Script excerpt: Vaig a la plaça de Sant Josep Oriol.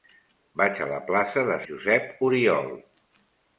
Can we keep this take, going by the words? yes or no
no